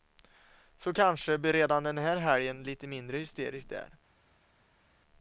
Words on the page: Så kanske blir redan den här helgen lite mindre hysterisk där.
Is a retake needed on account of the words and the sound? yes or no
no